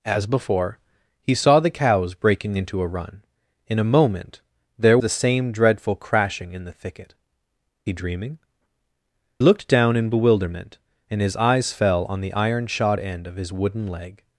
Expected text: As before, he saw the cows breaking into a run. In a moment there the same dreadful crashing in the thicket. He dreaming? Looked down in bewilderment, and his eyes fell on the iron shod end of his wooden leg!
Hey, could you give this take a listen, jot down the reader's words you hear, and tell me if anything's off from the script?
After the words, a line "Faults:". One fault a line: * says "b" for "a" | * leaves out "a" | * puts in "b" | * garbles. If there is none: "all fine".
As before, he saw the cows breaking into a run. In a moment there the same dreadful crashing in the thicket. He dreaming? Looked down in bewilderment, and his eyes fell on the iron shod end of his wooden leg!
Faults:
all fine